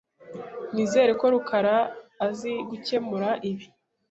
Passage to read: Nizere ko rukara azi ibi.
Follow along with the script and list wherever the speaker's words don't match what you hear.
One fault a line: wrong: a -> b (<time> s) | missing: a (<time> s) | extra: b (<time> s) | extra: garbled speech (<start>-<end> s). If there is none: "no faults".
extra: gukemura (2.7 s)